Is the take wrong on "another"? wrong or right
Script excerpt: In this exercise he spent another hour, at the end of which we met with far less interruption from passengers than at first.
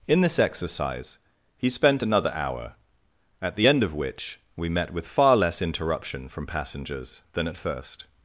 right